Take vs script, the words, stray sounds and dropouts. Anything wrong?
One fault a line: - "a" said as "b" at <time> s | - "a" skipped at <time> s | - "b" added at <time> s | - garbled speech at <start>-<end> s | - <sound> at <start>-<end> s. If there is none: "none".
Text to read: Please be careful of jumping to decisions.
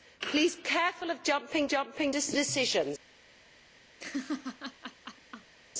- "be" skipped at 0.6 s
- "jumping" added at 1.7 s
- laugh at 4.0-5.5 s